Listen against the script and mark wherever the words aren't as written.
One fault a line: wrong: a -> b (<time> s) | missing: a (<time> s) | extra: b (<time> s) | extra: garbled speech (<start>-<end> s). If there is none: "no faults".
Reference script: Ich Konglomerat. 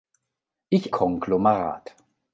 no faults